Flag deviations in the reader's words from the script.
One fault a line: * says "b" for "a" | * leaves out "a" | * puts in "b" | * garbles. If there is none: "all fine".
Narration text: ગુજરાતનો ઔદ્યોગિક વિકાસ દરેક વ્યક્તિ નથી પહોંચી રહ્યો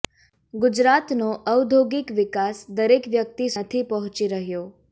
all fine